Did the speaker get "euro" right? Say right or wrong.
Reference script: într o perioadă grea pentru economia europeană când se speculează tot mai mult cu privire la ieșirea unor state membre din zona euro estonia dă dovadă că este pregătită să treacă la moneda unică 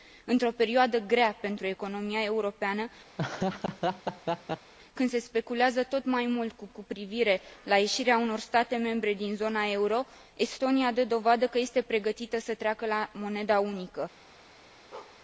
right